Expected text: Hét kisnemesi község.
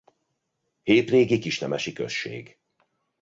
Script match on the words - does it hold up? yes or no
no